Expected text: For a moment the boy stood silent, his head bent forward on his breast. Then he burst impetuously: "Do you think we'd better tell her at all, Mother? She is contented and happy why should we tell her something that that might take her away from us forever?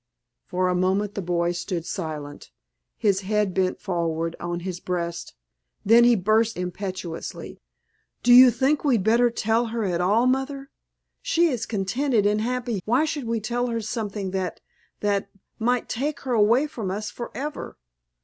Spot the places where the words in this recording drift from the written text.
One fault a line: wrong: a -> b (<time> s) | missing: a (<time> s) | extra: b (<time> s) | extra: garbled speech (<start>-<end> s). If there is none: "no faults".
no faults